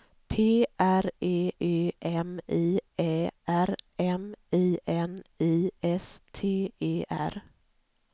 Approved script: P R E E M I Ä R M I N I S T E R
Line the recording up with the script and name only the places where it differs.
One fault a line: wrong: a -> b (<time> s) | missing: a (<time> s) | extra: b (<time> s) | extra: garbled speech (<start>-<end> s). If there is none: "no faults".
no faults